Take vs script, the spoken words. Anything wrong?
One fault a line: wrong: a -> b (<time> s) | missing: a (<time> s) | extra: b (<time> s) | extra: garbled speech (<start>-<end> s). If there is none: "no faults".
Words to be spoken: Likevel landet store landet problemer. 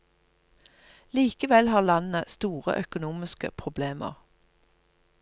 extra: har (1.7 s)
wrong: landet -> økonomiske (2.8 s)